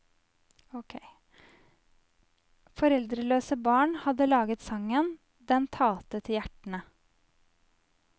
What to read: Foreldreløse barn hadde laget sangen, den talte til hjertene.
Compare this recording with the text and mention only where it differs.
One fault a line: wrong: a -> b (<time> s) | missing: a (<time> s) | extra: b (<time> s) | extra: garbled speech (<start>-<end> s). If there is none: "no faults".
no faults